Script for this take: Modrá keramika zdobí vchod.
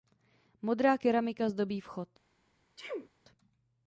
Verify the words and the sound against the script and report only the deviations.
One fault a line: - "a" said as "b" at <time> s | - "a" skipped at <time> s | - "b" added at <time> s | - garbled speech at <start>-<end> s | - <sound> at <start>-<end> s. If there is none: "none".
- sneeze at 2.8-3.1 s